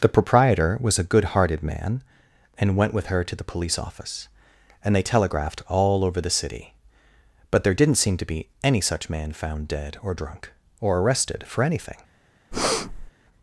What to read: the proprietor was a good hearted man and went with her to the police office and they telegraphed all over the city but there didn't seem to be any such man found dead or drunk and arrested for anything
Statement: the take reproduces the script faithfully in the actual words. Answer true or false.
false